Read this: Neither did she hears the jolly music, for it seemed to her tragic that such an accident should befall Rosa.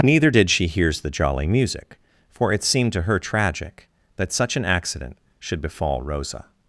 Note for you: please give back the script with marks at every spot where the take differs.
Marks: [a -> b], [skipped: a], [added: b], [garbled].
Neither did she hears the jolly music, for it seemed to her tragic that such an accident should befall Rosa.